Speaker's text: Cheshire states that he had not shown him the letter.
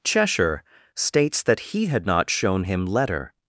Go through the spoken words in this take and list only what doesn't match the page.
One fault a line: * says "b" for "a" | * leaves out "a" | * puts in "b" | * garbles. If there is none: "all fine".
* leaves out "the"